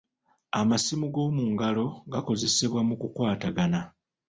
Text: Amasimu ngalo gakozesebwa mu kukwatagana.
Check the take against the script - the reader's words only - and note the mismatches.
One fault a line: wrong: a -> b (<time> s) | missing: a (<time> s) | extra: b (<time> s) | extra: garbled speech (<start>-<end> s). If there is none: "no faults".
extra: g'omu (1.1 s)